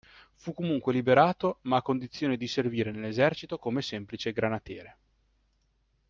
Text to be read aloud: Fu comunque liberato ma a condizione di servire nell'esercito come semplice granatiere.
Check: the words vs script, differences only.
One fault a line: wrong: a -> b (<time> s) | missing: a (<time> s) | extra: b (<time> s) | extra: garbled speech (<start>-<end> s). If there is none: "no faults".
no faults